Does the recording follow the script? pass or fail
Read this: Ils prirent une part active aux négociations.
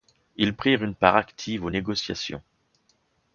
pass